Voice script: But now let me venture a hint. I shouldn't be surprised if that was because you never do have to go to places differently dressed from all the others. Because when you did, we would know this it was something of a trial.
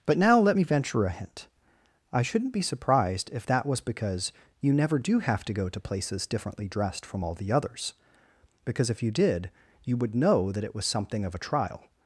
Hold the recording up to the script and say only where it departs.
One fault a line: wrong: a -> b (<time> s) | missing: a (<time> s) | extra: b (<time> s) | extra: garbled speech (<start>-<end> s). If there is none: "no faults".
wrong: when -> if (8.9 s)
wrong: we -> you (9.8 s)
wrong: this -> that (10.5 s)